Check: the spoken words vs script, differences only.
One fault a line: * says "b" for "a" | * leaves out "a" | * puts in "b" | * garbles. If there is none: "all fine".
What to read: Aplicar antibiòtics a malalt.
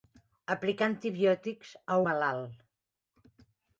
all fine